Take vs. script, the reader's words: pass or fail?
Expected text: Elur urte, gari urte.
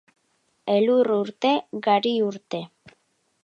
pass